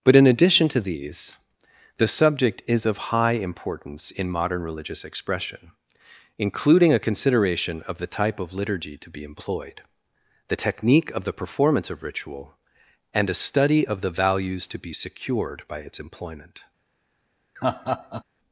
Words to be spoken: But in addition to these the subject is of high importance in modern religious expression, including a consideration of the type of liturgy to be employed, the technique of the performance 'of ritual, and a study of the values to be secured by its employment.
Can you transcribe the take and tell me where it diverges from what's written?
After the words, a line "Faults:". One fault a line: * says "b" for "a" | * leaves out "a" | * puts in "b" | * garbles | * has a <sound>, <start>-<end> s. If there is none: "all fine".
But in addition to these the subject is of high importance in modern religious expression, including a consideration of the type of liturgy to be employed, the technique of the performance 'of ritual, and a study of the values to be secured by its employment.
Faults:
* has a laugh, 17.6-18.2 s